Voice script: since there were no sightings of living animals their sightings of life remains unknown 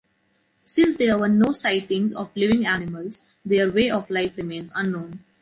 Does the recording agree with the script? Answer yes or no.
no